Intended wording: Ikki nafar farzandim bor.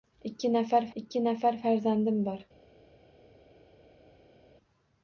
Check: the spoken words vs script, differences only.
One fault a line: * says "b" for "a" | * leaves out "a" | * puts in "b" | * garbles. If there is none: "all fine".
* puts in "ikki nafar"